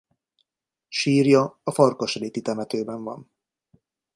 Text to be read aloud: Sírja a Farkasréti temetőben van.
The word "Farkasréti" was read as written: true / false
true